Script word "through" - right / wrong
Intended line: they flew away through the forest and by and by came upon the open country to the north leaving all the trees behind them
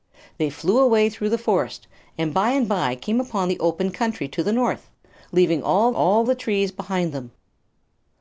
right